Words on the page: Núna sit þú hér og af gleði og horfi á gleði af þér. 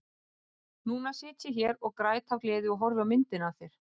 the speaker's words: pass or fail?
fail